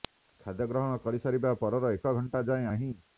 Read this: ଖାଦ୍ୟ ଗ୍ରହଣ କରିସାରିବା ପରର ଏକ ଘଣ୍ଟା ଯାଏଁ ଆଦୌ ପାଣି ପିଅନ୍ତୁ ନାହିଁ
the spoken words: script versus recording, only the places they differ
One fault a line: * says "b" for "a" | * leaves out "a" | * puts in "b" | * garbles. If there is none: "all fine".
* leaves out "ଆଦୌ ପାଣି ପିଅନ୍ତୁ"